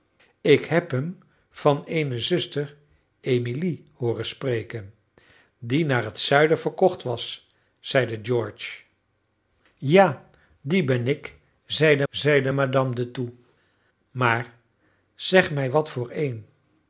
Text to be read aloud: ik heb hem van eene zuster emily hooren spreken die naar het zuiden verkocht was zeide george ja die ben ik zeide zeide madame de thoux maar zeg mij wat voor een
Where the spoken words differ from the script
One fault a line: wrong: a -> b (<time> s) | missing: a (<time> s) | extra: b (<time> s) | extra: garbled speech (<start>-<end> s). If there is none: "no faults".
no faults